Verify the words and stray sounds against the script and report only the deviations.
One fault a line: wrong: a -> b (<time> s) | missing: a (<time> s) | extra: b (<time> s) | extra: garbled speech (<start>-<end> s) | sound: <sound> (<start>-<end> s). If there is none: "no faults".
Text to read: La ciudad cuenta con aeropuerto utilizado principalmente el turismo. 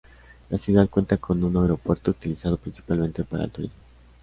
extra: un (1.4 s)
extra: para (3.2 s)